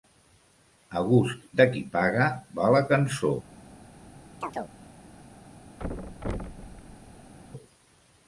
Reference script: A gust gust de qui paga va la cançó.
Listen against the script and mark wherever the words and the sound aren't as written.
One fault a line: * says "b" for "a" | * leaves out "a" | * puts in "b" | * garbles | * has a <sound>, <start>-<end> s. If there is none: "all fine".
* leaves out "gust"
* has a chirp, 4.4-4.7 s
* has a thud, 5.8-7.3 s